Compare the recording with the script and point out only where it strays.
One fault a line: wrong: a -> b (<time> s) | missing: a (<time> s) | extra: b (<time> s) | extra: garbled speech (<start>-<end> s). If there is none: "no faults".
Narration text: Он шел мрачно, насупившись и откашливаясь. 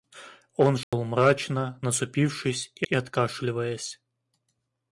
extra: и (2.9 s)